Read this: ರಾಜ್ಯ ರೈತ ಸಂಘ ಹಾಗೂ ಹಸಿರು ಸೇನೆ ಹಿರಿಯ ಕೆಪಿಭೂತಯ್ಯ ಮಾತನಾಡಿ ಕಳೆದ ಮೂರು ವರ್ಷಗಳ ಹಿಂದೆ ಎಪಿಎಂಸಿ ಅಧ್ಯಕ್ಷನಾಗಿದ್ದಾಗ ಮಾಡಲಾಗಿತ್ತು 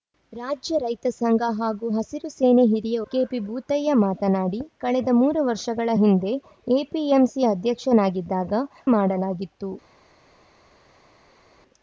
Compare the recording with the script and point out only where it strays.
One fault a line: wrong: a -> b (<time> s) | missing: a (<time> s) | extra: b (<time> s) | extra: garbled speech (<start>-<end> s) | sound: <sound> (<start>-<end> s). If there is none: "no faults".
no faults